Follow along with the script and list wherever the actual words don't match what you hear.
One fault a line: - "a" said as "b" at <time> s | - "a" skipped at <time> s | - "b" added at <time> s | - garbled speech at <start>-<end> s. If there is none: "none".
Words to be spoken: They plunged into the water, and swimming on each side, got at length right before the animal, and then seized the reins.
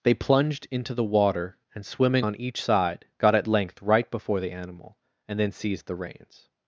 none